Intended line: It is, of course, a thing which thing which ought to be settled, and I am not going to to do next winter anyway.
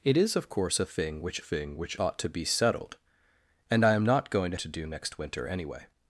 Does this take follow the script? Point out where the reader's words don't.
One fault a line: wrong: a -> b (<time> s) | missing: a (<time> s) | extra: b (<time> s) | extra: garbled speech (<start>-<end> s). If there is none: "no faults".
no faults